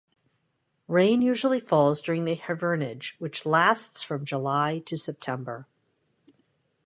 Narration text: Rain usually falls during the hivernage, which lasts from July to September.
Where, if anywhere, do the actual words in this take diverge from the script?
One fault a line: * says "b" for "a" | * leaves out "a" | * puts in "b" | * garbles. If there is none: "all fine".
all fine